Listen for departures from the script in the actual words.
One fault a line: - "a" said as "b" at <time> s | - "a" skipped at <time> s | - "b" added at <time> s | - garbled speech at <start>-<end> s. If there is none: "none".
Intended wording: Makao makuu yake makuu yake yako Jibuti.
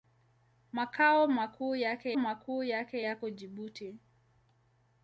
none